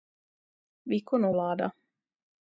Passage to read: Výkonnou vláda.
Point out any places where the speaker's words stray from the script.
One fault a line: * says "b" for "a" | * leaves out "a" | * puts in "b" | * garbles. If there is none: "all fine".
all fine